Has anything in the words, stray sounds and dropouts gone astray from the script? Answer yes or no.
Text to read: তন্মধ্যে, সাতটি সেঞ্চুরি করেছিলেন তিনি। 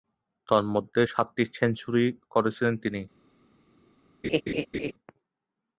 yes